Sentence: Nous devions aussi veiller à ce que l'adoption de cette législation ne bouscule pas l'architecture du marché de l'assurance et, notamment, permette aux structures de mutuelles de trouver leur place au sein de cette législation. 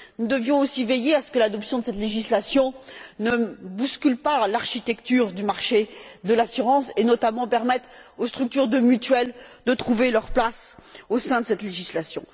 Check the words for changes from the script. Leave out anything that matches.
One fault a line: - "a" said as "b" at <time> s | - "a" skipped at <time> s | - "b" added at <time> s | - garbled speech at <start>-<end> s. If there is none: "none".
none